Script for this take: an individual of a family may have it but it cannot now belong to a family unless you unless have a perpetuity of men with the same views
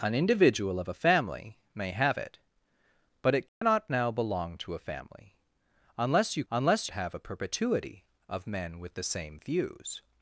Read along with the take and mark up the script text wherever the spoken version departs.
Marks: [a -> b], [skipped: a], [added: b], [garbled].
an individual of a family may have it but it cannot now belong to a family unless you unless have a perpetuity of men with the same views